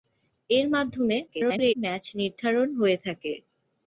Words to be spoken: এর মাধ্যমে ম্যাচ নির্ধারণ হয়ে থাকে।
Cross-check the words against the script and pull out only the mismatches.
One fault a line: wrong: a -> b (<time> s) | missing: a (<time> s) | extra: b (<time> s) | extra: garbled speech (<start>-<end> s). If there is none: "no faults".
extra: garbled speech (1.3-1.7 s)